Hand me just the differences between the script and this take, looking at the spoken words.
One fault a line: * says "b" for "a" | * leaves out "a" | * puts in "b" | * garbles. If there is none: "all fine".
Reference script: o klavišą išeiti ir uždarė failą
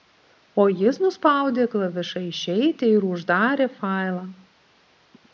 * puts in "jis nuspaudė"